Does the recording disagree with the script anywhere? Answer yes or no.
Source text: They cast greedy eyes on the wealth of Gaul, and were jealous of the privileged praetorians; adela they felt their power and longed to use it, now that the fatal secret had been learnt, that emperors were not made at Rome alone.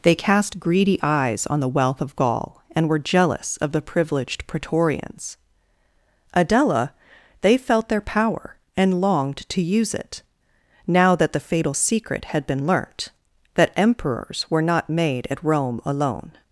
no